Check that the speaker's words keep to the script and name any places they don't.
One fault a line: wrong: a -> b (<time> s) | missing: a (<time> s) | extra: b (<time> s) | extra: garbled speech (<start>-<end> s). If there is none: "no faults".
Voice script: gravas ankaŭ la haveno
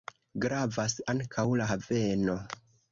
no faults